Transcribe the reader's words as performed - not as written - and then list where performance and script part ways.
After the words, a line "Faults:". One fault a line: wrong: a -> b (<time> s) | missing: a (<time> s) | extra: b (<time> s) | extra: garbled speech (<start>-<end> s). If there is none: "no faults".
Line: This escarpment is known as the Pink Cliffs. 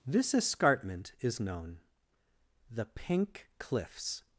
This escarpment is known the Pink Cliffs.
Faults:
missing: as (1.8 s)